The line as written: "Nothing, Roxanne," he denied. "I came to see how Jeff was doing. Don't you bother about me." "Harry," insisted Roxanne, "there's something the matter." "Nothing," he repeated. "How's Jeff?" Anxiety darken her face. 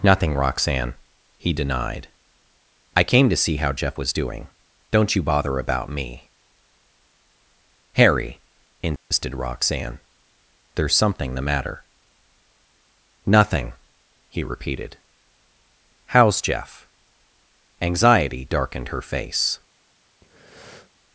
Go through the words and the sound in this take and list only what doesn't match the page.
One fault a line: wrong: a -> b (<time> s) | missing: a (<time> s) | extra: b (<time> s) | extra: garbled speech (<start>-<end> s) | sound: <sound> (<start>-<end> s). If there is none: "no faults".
sound: dropout (9.0-9.1 s)
wrong: darken -> darkened (18.5 s)
sound: breath (20.2-20.9 s)